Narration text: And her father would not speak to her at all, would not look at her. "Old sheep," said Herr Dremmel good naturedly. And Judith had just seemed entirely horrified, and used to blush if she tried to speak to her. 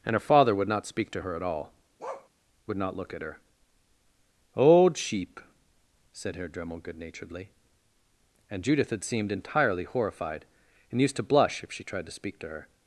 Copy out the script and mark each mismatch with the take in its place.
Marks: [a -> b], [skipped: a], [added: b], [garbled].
And her father would not speak to her at all, would not look at her. "Old sheep," said Herr Dremmel good naturedly. And Judith had [skipped: just] seemed entirely horrified, and used to blush if she tried to speak to her.